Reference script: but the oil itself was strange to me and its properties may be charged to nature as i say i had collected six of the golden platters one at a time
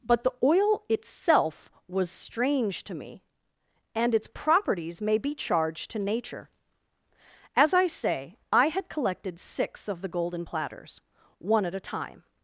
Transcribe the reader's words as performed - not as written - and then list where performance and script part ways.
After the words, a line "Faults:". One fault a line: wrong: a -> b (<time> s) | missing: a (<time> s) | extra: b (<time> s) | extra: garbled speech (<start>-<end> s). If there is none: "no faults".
but the oil itself was strange to me and its properties may be charged to nature as i say i had collected six of the golden platters one at a time
Faults:
no faults